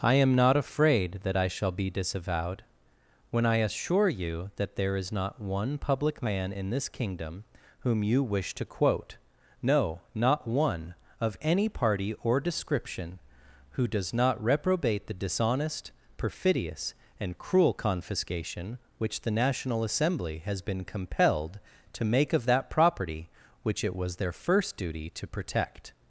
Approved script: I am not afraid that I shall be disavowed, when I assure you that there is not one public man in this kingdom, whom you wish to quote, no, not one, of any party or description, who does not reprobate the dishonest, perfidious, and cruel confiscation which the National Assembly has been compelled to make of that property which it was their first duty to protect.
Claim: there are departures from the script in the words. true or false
false